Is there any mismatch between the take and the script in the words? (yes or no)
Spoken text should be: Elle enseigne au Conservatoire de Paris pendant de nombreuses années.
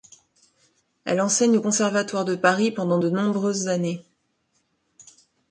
no